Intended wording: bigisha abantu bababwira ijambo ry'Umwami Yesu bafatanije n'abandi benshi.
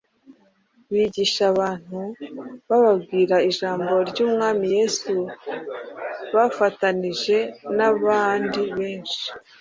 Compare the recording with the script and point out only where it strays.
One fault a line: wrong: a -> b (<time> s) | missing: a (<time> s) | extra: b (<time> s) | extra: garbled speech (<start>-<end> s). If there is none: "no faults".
no faults